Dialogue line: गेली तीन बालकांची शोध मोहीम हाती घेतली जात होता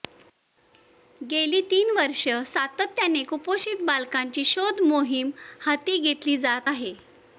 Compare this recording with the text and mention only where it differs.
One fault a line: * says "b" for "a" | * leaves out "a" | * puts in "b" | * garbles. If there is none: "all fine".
* puts in "वर्षे सातत्याने कुपोषित"
* says "आहे" for "होता"